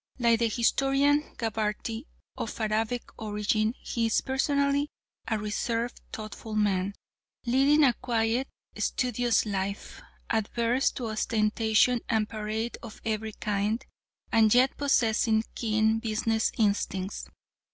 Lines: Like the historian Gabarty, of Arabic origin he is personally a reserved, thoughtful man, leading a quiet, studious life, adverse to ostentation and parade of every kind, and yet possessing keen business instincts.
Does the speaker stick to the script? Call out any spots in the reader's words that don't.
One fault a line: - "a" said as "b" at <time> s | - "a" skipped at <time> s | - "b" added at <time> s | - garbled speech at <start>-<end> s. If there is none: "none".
none